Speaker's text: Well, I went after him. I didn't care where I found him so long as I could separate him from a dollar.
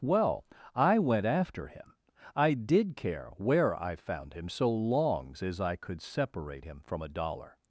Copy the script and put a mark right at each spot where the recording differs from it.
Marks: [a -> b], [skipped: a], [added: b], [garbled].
Well, I went after him. I [didn't -> did] care where I found him so [long -> longs] as I could separate him from a dollar.